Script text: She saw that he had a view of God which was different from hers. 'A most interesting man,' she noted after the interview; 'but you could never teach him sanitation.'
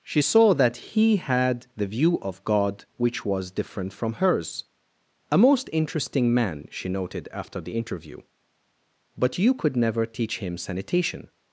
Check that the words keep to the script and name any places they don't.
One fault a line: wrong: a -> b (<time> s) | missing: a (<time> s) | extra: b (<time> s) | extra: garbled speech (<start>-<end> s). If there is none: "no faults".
wrong: a -> the (1.8 s)